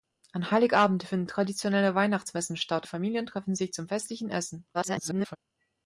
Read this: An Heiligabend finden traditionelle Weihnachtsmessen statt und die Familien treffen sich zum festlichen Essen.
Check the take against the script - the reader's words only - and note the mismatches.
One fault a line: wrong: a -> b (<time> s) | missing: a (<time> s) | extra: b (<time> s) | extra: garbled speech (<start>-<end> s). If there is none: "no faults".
missing: und (2.9 s)
extra: garbled speech (4.7-5.4 s)